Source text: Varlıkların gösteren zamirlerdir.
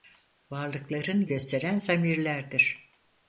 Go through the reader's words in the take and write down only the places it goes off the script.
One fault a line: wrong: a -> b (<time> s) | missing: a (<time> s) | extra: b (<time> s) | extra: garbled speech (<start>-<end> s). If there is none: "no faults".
no faults